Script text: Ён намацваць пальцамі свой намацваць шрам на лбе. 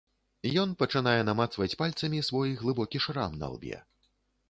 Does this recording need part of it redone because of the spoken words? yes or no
yes